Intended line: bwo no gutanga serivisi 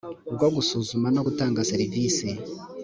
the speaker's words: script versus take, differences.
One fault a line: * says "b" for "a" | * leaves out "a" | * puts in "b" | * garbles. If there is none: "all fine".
* puts in "gusuzuma"